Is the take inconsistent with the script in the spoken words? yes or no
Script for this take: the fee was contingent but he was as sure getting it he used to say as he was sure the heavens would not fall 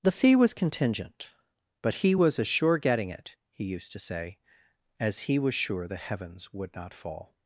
no